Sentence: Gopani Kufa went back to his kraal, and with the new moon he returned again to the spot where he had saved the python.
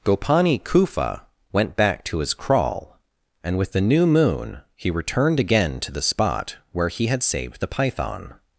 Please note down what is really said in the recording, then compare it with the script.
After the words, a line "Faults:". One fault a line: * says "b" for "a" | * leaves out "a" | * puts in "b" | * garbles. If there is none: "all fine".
Gopani Kufa went back to his kraal, and with the new moon he returned again to the spot where he had saved the python.
Faults:
all fine